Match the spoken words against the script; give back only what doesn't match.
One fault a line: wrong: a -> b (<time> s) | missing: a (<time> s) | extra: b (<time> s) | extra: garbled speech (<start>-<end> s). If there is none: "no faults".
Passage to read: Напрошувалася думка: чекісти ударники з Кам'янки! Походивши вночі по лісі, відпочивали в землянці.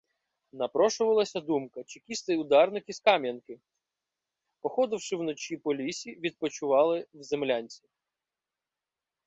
no faults